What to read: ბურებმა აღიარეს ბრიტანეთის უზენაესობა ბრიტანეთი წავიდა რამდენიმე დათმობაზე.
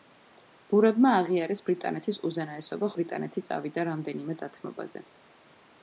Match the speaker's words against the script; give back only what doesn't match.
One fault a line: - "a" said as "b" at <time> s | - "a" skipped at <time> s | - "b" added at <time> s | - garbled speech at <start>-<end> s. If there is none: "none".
none